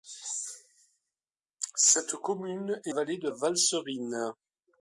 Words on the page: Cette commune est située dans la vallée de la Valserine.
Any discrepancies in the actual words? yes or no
yes